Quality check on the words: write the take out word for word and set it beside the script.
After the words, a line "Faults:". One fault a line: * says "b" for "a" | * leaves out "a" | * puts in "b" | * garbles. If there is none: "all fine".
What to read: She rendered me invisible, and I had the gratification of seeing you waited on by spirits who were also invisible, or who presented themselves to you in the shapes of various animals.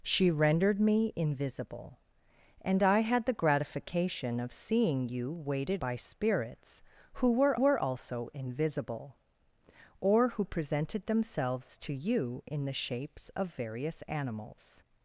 She rendered me invisible, and I had the gratification of seeing you waited by spirits who were were also invisible, or who presented themselves to you in the shapes of various animals.
Faults:
* leaves out "on"
* puts in "were"